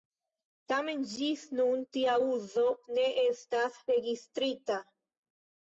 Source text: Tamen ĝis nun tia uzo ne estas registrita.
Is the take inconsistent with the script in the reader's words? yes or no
no